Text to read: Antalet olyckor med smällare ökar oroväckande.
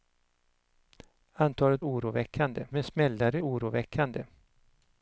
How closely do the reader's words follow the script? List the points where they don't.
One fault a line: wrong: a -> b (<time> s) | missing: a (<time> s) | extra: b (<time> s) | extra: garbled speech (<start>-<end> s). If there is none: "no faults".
wrong: olyckor -> oroväckande (1.8 s)
missing: ökar (3.4 s)